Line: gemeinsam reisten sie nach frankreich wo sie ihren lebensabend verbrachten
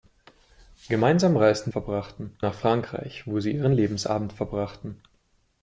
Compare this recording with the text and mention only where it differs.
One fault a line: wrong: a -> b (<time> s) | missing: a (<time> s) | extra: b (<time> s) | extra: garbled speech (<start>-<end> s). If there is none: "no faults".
wrong: sie -> verbrachten (1.7 s)